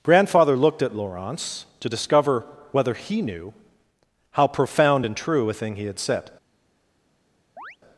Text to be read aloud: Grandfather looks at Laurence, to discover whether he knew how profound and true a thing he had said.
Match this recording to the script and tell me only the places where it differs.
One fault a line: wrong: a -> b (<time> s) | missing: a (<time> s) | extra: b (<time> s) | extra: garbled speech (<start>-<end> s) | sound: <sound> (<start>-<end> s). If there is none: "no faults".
wrong: looks -> looked (0.6 s)
sound: chirp (7.6-7.8 s)